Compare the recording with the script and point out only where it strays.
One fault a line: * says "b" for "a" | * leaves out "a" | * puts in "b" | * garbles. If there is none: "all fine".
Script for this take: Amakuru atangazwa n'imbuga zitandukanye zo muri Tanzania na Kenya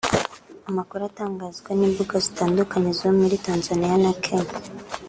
all fine